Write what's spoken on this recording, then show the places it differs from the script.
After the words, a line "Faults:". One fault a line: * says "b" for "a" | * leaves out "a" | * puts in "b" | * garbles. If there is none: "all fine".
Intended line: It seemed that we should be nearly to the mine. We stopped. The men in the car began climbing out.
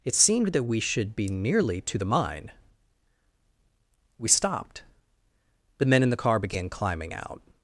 It seemed that we should be nearly to the mine. We stopped. The men in the car began climbing out.
Faults:
all fine